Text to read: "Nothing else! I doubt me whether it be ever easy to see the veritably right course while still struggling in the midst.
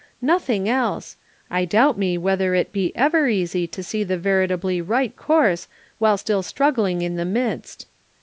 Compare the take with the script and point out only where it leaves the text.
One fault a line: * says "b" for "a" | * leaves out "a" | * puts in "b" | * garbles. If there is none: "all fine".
all fine